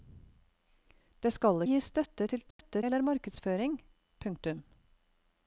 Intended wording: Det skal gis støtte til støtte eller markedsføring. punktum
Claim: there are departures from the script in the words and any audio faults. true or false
true